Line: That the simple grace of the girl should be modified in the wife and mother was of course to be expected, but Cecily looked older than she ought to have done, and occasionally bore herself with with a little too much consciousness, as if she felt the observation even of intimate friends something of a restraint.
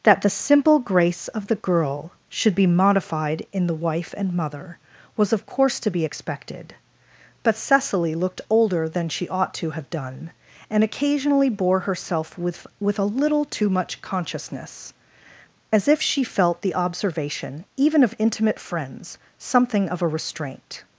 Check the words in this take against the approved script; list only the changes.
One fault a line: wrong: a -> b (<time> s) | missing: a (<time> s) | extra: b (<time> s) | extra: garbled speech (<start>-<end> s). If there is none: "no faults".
no faults